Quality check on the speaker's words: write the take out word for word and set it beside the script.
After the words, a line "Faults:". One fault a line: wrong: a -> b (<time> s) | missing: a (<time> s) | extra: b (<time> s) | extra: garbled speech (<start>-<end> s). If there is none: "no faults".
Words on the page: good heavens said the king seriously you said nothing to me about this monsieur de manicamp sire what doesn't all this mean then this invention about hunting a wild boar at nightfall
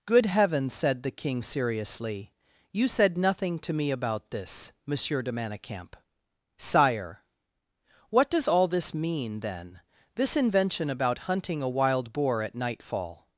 good heavens said the king seriously you said nothing to me about this monsieur de manicamp sire what does all this mean then this invention about hunting a wild boar at nightfall
Faults:
wrong: doesn't -> does (8.3 s)